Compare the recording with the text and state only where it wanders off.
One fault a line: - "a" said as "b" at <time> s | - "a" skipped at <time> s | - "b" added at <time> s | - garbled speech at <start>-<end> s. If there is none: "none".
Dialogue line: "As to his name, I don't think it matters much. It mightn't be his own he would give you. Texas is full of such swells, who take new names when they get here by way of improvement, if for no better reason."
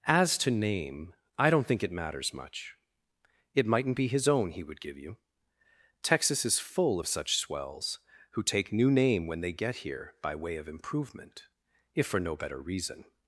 - "his" skipped at 0.5 s
- "names" said as "name" at 8.9 s